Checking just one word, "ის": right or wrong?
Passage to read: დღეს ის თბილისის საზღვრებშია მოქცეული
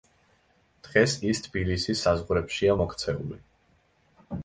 right